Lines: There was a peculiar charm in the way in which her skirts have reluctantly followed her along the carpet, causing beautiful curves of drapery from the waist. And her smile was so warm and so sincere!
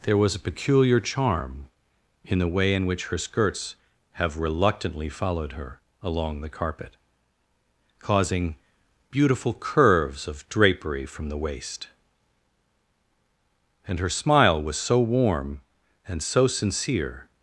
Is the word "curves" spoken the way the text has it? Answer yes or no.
yes